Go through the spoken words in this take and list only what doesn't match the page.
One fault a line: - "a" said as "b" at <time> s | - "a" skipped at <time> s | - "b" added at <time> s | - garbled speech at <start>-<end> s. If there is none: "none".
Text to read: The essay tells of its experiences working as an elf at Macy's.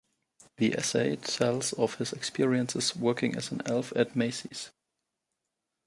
- "its" said as "his" at 1.9 s